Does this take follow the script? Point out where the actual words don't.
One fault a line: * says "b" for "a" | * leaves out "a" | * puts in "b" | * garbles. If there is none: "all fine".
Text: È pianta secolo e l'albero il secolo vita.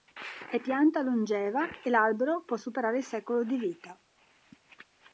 * says "longeva" for "secolo"
* puts in "può superare"
* puts in "di"